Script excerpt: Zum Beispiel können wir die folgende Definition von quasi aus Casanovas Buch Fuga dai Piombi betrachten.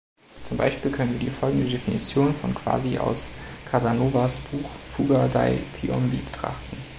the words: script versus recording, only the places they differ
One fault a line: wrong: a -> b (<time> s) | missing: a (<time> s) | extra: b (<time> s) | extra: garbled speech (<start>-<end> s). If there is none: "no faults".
no faults